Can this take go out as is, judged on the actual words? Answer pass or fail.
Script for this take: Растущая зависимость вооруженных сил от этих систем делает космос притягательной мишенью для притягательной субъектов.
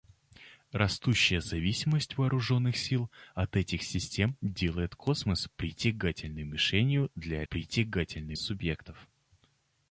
pass